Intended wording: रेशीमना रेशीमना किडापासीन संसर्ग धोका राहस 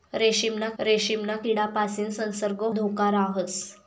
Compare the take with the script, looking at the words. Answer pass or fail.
pass